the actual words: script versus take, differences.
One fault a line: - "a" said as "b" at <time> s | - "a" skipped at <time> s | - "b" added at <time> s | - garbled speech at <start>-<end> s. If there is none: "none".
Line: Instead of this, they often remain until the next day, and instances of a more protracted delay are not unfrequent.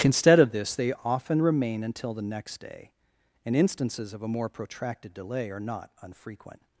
none